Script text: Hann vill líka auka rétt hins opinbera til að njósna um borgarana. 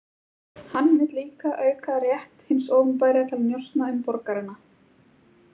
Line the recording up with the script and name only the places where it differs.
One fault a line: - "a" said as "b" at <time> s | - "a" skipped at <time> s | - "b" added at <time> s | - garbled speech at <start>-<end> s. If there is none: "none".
none